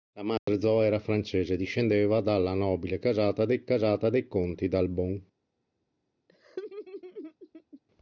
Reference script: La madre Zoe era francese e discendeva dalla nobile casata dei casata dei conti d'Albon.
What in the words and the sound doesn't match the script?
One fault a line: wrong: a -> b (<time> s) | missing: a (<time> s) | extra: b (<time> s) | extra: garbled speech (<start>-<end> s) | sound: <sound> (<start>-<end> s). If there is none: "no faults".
sound: dropout (0.4-0.5 s)
sound: laugh (6.3-7.8 s)